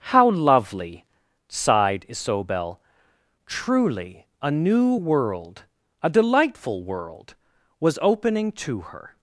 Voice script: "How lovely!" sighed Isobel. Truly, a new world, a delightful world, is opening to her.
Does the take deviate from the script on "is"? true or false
true